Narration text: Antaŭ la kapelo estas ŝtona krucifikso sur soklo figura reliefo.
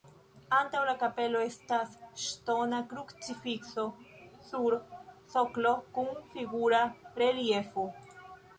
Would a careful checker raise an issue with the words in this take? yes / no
yes